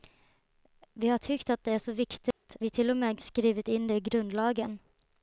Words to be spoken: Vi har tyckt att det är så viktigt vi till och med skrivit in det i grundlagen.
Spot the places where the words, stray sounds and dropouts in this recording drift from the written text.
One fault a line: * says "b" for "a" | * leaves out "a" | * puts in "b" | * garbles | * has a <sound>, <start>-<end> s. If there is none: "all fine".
* has a dropout, 2.3-2.4 s